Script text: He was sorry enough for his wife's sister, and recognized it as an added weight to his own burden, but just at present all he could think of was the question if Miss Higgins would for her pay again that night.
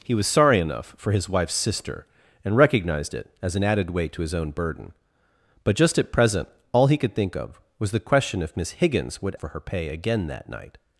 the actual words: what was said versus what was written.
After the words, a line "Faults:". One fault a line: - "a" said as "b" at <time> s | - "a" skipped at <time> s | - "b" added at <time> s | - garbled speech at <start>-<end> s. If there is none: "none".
He was sorry enough for his wife's sister, and recognized it as an added weight to his own burden, but just at present all he could think of was the question if Miss Higgins would for her pay again that night.
Faults:
none